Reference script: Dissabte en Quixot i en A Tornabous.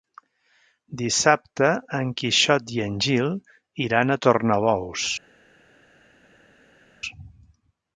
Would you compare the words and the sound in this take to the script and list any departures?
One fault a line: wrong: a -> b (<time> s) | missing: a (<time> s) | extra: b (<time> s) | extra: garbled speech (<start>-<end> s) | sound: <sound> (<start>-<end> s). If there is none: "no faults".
extra: Gil iran (3.1 s)